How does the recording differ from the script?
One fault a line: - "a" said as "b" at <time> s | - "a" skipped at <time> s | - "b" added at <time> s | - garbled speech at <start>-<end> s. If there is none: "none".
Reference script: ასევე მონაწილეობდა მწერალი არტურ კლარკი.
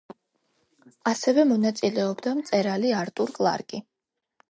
none